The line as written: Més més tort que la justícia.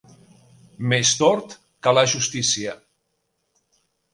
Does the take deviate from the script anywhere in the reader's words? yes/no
yes